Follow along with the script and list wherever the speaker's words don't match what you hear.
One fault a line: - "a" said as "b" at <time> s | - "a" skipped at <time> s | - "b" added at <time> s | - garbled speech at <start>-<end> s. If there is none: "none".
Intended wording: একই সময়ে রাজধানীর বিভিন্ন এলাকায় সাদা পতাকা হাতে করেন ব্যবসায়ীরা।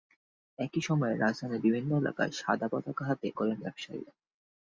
none